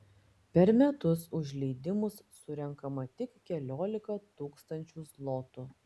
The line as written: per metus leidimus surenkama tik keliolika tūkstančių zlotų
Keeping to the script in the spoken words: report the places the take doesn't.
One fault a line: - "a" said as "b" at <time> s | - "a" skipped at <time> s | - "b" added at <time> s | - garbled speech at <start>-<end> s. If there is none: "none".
- "už" added at 1.4 s